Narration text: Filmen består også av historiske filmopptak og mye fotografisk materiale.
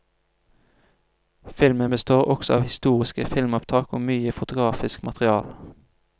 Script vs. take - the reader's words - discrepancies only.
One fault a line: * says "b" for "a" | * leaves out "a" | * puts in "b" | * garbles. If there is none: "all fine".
all fine